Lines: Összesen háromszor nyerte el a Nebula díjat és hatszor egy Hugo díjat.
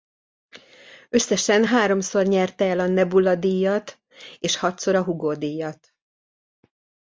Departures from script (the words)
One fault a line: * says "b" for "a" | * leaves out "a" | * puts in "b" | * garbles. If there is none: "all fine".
* says "a" for "egy"